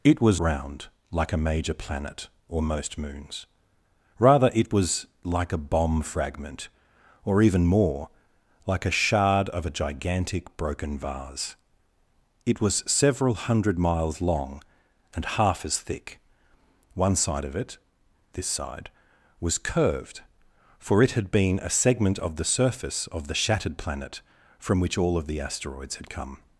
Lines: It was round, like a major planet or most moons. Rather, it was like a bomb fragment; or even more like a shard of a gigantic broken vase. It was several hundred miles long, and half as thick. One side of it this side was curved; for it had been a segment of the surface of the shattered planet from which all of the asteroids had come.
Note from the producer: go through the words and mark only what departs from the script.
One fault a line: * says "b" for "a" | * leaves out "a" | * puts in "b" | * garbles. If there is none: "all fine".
all fine